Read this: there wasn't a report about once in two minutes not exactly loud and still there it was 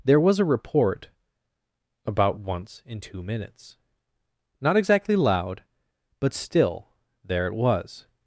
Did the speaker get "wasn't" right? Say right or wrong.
wrong